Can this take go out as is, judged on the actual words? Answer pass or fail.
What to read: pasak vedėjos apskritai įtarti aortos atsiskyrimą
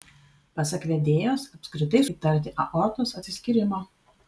pass